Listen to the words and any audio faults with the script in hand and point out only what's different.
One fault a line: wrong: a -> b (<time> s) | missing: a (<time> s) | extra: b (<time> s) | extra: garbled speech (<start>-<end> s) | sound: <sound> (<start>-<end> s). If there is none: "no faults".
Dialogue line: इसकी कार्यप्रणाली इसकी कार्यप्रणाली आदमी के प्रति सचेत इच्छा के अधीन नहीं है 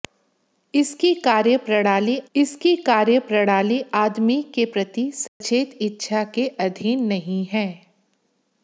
sound: dropout (5.3-5.4 s)